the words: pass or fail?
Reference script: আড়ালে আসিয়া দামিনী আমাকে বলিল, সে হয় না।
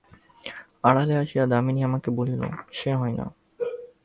pass